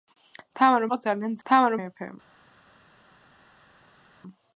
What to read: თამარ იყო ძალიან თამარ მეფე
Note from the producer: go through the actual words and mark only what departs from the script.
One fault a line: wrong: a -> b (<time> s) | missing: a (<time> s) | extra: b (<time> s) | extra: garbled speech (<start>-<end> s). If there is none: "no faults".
no faults